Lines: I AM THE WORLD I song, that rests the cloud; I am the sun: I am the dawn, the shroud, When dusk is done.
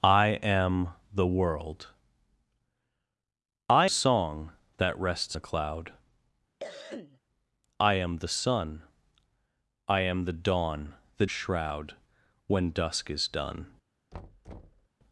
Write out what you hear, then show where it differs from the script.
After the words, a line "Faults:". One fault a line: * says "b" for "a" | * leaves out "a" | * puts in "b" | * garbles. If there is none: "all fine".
I AM THE WORLD I song, that rests the cloud; I am the sun: I am the dawn, the shroud, When dusk is done.
Faults:
all fine